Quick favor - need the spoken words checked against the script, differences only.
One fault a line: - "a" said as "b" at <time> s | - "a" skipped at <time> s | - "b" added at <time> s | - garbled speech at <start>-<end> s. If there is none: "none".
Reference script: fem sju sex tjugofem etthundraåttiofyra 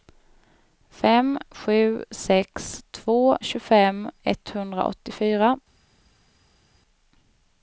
- "två" added at 2.9 s